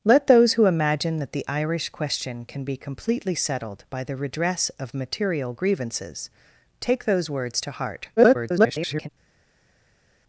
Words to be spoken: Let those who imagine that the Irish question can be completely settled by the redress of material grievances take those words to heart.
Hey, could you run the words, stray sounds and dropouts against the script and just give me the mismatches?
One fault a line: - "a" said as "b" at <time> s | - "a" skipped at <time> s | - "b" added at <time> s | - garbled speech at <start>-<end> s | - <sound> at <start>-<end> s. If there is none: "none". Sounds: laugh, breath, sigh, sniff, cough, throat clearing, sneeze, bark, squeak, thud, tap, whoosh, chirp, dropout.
- garbled speech at 8.2-9.1 s